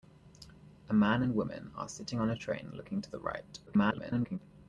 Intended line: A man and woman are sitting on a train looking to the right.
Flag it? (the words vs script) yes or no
yes